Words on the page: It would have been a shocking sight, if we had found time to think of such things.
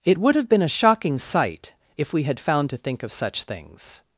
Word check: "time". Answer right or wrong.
wrong